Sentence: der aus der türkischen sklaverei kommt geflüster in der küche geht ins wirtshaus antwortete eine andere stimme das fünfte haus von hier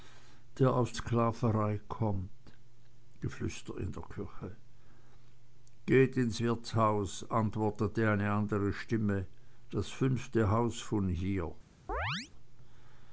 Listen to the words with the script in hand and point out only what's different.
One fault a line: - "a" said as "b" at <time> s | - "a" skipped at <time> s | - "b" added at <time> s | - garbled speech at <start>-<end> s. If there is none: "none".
- "der türkischen" skipped at 1.0 s